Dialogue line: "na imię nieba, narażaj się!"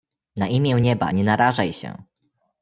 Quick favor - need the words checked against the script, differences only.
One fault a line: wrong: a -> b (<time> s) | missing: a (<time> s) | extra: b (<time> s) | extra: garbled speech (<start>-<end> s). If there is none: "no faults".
extra: nie (1.1 s)